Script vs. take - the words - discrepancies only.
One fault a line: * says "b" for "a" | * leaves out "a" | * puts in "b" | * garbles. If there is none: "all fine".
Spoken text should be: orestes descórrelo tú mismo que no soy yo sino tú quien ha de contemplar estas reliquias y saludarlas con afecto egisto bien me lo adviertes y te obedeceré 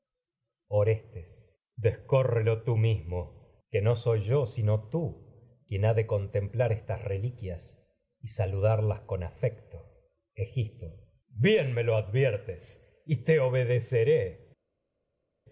all fine